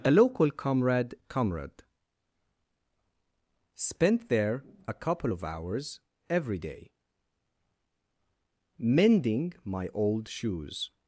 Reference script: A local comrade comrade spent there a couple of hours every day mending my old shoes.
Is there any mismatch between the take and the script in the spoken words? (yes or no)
no